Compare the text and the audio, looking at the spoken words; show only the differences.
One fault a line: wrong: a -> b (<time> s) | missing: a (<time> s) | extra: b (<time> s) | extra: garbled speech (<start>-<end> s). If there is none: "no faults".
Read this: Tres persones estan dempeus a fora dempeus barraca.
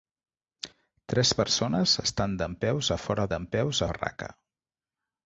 no faults